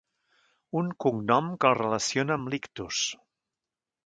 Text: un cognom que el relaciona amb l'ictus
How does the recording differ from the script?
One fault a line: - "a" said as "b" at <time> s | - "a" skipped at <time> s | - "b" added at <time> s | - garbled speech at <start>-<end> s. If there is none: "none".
none